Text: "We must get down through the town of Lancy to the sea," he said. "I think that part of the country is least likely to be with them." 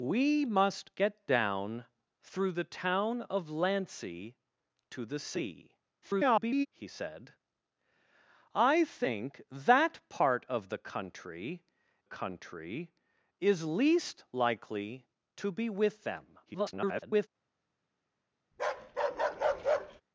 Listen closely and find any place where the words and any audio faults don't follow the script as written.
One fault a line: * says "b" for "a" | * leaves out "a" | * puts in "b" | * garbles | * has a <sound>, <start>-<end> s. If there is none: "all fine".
* garbles
* puts in "country"
* garbles
* has a bark, 18.5-20.0 s